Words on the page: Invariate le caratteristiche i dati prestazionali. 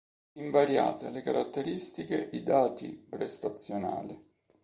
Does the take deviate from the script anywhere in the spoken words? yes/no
no